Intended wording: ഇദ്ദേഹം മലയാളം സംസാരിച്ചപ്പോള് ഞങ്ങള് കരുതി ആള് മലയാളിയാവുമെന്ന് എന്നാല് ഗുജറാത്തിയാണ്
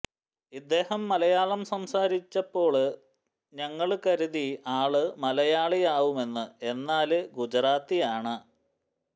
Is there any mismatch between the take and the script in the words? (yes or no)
no